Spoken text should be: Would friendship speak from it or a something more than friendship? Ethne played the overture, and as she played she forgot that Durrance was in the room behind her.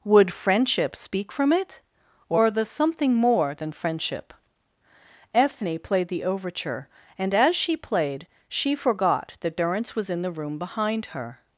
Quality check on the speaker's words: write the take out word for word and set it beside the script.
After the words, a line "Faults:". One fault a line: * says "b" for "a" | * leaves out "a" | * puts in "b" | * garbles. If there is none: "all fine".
Would friendship speak from it or the something more than friendship? Ethne played the overture, and as she played she forgot that Durrance was in the room behind her.
Faults:
* says "the" for "a"